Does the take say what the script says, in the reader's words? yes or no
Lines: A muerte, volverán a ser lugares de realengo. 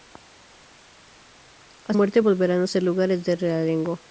yes